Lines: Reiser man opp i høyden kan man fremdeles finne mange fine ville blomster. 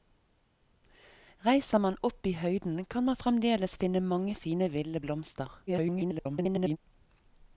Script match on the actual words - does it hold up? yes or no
no